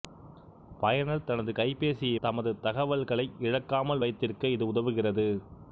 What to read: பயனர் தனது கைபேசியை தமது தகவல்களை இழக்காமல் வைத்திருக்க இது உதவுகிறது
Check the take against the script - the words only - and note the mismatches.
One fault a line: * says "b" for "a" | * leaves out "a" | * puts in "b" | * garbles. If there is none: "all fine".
all fine